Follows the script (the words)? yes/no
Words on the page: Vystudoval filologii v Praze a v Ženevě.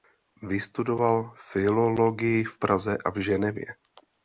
yes